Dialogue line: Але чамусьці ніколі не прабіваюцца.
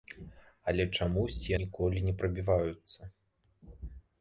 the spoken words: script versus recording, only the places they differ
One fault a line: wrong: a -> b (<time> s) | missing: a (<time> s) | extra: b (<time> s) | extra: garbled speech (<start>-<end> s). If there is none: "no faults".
no faults